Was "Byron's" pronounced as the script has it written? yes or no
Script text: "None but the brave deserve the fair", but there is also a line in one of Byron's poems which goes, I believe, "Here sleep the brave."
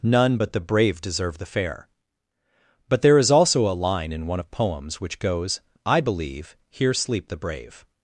no